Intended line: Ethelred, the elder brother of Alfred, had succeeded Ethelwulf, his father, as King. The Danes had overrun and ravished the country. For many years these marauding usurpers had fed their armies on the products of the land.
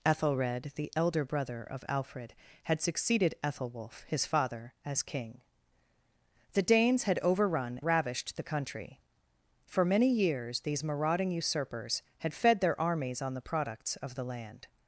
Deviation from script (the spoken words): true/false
true